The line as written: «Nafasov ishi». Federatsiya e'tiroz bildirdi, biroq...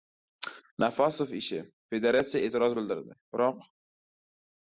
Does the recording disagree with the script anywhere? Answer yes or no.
no